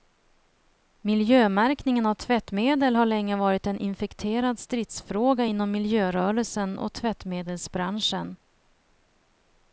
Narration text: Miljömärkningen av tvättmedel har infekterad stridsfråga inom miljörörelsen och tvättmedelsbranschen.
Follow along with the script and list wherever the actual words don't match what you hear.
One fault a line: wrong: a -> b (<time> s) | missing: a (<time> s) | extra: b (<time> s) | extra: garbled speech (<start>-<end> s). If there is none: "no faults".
extra: länge varit en (3.0 s)